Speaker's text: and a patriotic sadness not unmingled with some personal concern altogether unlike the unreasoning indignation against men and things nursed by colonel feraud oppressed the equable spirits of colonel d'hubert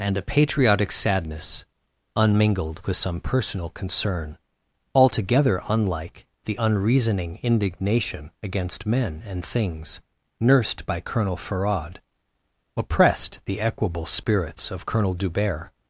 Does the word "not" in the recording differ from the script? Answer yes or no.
yes